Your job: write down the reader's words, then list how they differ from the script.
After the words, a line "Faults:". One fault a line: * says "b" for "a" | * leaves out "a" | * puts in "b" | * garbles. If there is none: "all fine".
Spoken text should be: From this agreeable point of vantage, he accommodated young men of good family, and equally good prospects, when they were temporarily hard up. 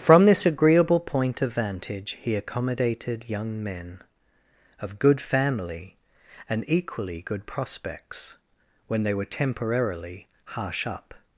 From this agreeable point of vantage, he accommodated young men of good family, and equally good prospects, when they were temporarily harsh up.
Faults:
* says "harsh" for "hard"